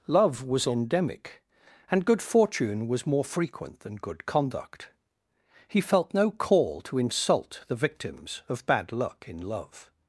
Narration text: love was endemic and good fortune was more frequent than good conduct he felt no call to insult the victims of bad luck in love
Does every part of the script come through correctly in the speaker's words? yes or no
yes